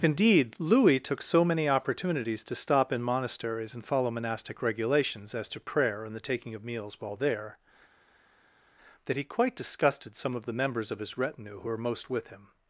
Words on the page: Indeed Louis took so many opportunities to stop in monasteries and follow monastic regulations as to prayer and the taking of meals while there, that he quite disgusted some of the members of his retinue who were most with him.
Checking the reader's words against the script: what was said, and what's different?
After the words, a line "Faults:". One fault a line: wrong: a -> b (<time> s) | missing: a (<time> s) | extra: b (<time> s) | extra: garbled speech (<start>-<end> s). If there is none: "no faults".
Indeed Louis took so many opportunities to stop in monasteries and follow monastic regulations as to prayer and the taking of meals while there, that he quite disgusted some of the members of his retinue who were most with him.
Faults:
no faults